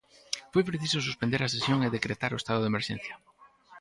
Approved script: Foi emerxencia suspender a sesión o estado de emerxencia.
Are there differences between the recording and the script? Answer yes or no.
yes